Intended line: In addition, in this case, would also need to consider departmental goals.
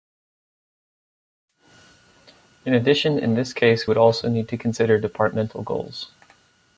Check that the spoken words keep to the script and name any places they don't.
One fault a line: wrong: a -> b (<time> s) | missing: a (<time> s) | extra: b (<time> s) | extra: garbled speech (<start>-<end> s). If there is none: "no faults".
no faults